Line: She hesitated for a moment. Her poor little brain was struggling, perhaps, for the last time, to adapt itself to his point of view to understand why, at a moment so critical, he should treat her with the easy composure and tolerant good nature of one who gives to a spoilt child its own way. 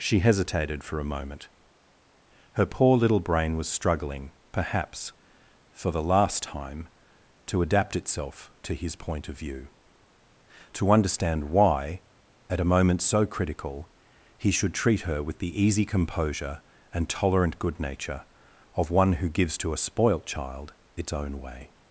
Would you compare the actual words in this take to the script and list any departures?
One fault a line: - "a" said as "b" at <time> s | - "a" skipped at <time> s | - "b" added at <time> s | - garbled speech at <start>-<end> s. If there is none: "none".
none